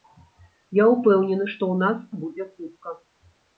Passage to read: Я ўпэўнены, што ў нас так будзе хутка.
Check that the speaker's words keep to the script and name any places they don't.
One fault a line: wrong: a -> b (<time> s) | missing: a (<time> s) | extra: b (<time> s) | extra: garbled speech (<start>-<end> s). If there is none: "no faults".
missing: так (2.0 s)